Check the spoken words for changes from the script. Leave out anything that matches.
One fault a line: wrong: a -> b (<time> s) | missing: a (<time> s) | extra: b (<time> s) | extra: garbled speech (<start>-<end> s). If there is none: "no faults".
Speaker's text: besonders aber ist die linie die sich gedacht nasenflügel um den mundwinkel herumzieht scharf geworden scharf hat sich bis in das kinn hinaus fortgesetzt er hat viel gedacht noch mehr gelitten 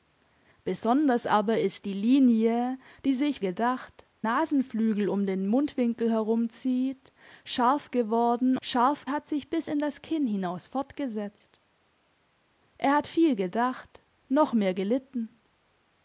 no faults